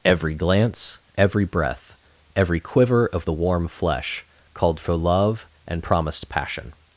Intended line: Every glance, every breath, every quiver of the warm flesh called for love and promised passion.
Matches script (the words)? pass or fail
pass